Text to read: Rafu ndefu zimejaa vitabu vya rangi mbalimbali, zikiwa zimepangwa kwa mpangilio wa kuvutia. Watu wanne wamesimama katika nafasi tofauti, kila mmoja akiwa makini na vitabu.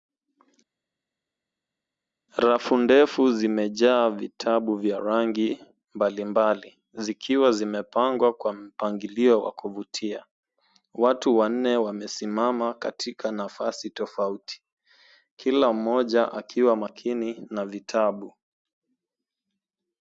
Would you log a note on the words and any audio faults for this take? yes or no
no